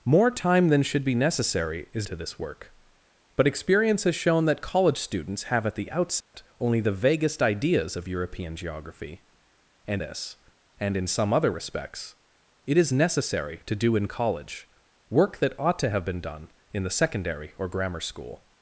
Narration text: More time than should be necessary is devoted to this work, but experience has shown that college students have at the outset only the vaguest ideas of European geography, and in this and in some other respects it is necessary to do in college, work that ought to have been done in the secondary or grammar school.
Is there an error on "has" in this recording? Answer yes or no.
no